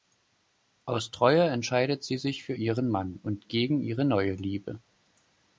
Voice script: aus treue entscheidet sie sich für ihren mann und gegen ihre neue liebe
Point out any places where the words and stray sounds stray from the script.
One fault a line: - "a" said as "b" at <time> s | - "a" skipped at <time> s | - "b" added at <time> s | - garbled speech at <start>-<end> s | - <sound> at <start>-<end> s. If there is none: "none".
none